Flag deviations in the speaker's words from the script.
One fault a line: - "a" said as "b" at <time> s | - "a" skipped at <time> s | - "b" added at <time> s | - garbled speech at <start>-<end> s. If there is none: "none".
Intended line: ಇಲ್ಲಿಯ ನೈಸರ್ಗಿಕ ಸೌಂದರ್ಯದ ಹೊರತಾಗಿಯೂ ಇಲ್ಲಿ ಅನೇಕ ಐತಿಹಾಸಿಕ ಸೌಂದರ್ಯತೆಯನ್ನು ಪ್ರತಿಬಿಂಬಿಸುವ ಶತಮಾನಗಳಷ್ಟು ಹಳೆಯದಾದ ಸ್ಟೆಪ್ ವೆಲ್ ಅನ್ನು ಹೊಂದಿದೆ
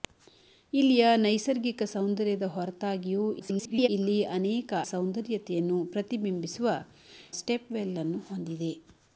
- garbled speech at 3.4-3.9 s
- "ಐತಿಹಾಸಿಕ" skipped at 4.7 s
- "ಶತಮಾನಗಳಷ್ಟು ಹಳೆಯದಾದ" skipped at 6.8 s